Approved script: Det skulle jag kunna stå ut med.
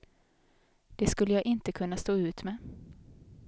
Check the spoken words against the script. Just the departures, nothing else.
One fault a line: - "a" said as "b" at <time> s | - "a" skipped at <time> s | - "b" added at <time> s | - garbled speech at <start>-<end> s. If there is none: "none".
- "inte" added at 1.4 s